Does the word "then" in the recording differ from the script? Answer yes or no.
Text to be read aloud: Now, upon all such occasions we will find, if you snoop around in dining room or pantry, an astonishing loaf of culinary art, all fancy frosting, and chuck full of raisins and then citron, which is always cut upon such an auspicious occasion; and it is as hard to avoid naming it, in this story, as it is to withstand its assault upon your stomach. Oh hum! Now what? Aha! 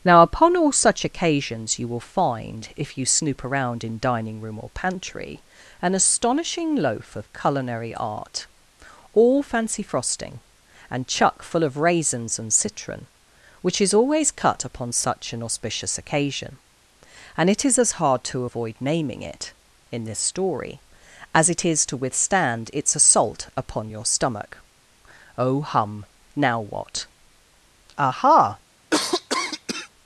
yes